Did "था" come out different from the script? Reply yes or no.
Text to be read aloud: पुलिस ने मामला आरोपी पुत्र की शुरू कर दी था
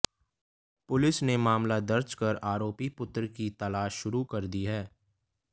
yes